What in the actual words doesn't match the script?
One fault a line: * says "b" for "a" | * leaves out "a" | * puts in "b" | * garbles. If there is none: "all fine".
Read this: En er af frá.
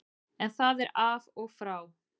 * puts in "það"
* puts in "og"